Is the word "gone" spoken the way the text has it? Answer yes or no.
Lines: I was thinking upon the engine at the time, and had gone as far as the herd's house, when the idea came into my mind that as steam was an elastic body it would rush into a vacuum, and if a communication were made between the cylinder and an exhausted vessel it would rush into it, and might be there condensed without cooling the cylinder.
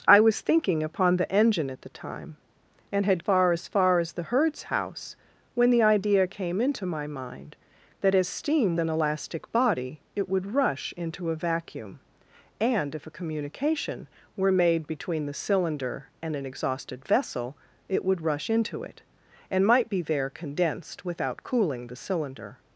no